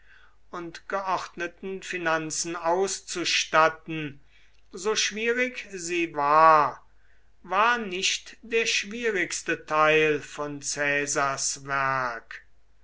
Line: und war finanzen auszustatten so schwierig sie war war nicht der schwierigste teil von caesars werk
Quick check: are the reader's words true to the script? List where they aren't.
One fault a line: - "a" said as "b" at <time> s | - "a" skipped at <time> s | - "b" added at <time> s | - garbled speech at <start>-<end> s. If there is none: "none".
- "war" said as "geordneten" at 0.9 s